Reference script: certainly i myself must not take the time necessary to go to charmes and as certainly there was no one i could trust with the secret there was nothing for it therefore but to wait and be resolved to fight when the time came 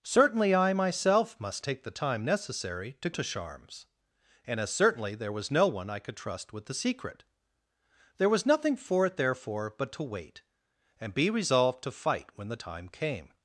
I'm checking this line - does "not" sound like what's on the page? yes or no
no